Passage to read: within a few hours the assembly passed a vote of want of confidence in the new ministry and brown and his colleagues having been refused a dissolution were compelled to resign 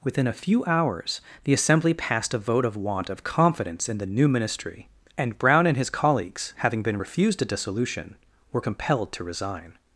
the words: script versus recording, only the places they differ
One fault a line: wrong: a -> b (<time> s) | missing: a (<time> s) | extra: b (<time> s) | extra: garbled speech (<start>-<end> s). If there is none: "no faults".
no faults